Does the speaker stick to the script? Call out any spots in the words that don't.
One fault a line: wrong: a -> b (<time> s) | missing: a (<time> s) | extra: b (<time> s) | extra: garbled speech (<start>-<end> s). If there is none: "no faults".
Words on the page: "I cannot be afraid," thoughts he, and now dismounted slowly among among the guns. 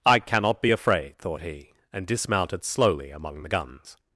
wrong: thoughts -> thought (1.2 s)
missing: now (2.1 s)
missing: among (3.4 s)